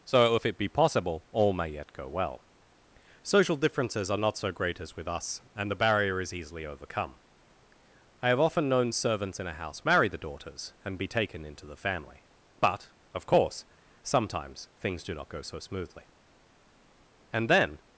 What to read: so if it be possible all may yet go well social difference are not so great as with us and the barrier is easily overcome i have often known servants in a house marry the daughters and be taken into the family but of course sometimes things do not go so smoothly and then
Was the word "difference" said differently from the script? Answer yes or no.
yes